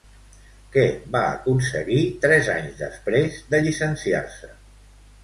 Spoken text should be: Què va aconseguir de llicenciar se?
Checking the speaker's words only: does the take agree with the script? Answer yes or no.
no